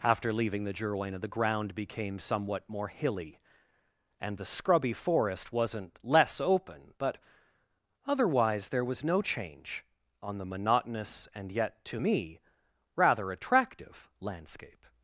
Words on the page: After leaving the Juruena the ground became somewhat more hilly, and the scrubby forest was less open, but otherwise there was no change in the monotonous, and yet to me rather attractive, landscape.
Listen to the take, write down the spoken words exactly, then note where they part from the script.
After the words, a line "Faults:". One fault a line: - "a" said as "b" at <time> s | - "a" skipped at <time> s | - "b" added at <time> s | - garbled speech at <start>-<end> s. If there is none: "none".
After leaving the Juruena the ground became somewhat more hilly, and the scrubby forest wasn't less open, but otherwise there was no change on the monotonous, and yet to me rather attractive, landscape.
Faults:
- "was" said as "wasn't" at 5.5 s
- "in" said as "on" at 10.2 s